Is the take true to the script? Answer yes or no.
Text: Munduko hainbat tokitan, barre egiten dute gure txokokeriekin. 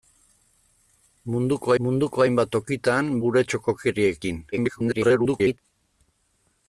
no